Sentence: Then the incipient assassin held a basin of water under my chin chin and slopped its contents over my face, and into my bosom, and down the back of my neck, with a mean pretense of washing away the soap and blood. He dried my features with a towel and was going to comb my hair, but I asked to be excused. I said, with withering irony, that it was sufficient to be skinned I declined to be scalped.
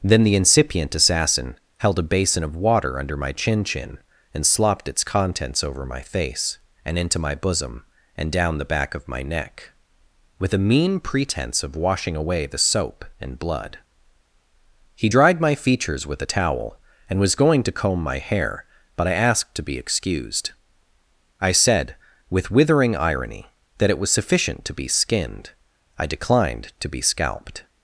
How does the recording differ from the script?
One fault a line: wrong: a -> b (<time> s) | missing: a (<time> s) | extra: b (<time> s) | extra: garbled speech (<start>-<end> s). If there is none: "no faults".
no faults